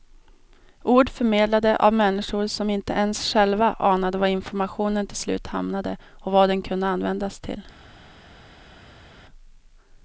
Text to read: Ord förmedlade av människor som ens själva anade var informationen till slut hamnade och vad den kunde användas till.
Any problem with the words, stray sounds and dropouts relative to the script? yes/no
yes